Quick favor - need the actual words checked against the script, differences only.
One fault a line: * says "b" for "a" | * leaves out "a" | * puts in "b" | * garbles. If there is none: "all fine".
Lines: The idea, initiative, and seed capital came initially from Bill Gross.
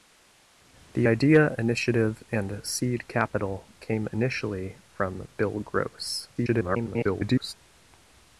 * garbles